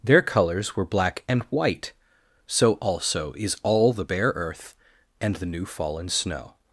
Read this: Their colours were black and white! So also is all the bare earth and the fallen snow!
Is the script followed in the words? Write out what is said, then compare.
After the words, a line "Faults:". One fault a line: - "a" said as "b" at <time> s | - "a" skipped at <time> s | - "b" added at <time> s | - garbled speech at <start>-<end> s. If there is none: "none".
Their colours were black and white! So also is all the bare earth and the new fallen snow!
Faults:
- "new" added at 5.4 s